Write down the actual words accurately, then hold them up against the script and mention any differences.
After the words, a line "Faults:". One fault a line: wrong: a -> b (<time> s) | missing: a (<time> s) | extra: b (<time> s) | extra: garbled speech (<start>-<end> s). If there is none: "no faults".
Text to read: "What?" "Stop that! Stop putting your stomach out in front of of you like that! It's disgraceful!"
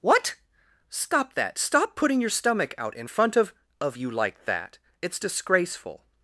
"What?" "Stop that! Stop putting your stomach out in front of of you like that! It's disgraceful!"
Faults:
no faults